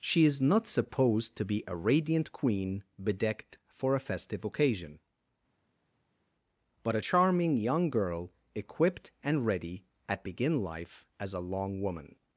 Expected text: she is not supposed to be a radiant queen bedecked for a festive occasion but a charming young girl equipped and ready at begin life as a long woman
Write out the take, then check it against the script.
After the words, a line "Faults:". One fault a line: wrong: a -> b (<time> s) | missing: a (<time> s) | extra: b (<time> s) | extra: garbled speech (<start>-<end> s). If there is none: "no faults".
she is not supposed to be a radiant queen bedecked for a festive occasion but a charming young girl equipped and ready at begin life as a long woman
Faults:
no faults